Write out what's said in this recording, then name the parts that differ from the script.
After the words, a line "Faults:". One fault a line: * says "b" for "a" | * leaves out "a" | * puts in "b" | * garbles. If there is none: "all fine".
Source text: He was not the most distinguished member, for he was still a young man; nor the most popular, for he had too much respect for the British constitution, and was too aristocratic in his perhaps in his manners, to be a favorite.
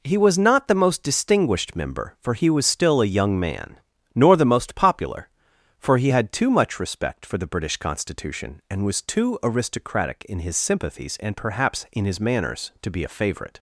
He was not the most distinguished member, for he was still a young man; nor the most popular, for he had too much respect for the British constitution, and was too aristocratic in his sympathies, and perhaps in his manners, to be a favorite.
Faults:
* puts in "sympathies and"